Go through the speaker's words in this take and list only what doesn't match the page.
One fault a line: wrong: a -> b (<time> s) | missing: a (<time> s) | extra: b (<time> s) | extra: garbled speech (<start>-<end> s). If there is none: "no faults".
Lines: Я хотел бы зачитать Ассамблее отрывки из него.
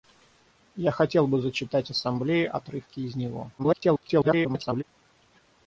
extra: garbled speech (3.6-4.8 s)